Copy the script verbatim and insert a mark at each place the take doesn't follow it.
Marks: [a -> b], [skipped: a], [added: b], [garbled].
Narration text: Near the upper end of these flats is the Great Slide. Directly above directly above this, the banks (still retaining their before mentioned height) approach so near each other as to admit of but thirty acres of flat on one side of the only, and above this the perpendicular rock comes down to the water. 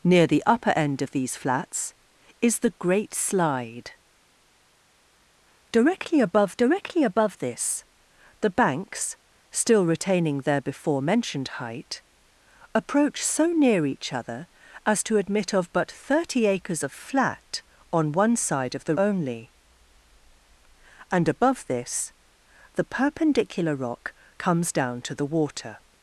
Near the upper end of these flats is the Great Slide. Directly above directly above this, the banks (still retaining their before mentioned height) approach so near each other as to admit of but thirty acres of flat on one side of the only, and above this the perpendicular rock comes down to the water.